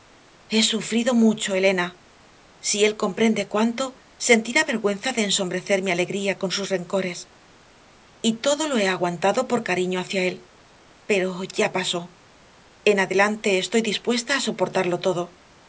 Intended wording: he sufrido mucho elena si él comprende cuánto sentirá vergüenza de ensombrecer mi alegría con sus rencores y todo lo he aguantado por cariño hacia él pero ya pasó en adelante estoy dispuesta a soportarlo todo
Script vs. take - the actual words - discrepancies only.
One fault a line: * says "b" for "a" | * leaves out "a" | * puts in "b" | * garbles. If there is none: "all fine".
all fine